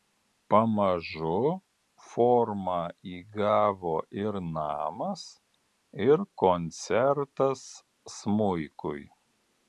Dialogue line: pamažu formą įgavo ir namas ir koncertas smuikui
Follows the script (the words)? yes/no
yes